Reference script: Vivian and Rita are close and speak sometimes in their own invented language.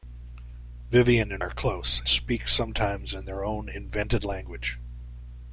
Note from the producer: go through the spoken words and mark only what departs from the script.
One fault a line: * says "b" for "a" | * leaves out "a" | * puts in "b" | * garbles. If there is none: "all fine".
* leaves out "Rita"
* leaves out "and"